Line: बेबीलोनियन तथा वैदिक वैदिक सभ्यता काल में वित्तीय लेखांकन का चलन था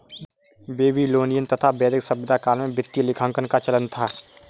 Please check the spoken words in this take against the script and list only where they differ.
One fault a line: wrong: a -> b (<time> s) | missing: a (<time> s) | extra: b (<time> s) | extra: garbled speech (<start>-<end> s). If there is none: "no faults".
missing: वैदिक (2.0 s)